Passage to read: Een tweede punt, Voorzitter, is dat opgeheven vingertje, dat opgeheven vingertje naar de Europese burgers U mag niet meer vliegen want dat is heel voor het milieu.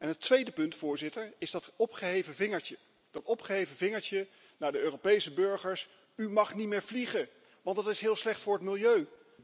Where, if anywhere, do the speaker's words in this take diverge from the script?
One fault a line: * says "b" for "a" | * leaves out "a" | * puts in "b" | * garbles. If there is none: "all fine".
* says "Het" for "Een"
* puts in "slecht"